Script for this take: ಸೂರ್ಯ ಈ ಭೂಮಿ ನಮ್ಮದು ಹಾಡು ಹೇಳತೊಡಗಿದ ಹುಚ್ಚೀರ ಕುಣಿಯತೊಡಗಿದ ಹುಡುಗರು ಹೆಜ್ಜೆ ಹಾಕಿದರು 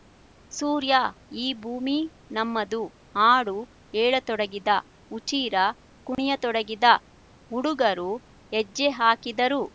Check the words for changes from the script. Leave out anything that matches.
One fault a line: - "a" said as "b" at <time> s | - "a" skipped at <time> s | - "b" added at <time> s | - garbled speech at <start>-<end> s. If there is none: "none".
none